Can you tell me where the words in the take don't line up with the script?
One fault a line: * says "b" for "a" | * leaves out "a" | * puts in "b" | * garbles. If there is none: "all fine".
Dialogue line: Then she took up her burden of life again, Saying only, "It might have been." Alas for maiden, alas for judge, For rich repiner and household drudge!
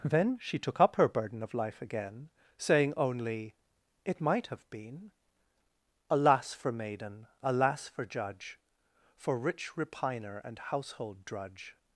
all fine